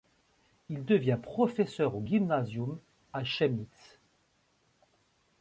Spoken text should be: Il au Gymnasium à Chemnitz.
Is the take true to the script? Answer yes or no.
no